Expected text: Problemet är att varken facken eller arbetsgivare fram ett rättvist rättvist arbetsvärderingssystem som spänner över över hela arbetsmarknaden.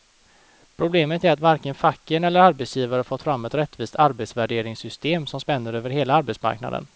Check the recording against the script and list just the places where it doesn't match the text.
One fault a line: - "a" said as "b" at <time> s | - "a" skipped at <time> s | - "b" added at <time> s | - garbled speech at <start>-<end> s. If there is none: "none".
- "fått" added at 3.0 s
- "rättvist" skipped at 4.0 s
- "över" skipped at 5.9 s